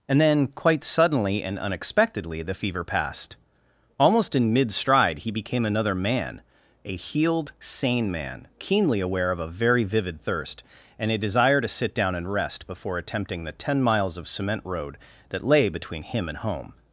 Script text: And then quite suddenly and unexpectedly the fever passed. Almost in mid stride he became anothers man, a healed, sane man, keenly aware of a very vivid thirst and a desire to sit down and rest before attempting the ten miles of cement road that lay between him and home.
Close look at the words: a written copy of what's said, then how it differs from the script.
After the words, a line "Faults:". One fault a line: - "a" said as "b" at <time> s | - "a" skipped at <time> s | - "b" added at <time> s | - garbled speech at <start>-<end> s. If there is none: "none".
And then quite suddenly and unexpectedly the fever passed. Almost in mid stride he became another man, a healed, sane man, keenly aware of a very vivid thirst and a desire to sit down and rest before attempting the ten miles of cement road that lay between him and home.
Faults:
- "anothers" said as "another" at 5.6 s